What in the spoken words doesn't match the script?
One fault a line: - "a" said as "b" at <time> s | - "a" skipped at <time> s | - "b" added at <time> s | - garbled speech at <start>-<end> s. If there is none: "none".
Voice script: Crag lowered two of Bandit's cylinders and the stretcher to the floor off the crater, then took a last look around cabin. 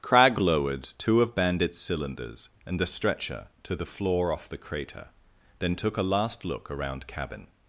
none